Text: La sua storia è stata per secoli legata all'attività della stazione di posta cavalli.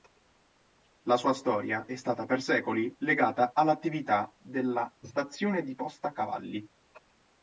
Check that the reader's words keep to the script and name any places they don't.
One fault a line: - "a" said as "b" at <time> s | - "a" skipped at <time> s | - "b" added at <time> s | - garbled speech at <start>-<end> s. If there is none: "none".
none